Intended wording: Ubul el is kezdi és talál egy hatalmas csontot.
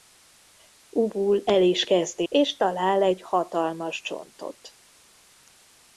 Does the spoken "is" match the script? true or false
true